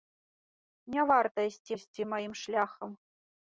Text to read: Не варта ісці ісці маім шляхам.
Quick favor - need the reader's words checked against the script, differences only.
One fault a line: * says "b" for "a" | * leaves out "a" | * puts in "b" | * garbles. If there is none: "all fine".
all fine